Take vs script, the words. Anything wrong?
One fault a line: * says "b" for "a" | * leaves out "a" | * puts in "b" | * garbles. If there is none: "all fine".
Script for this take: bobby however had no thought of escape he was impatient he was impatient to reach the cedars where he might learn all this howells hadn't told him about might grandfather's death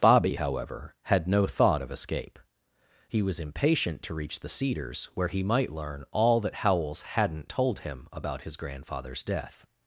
* leaves out "he was impatient"
* says "that" for "this"
* says "his" for "might"